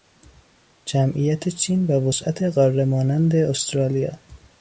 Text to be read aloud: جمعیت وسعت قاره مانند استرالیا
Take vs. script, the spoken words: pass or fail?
fail